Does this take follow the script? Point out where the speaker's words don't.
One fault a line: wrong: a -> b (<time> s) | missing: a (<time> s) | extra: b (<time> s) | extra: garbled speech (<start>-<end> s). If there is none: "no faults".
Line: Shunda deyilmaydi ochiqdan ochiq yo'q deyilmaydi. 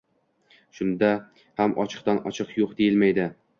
wrong: deyilmaydi -> ham (1.6 s)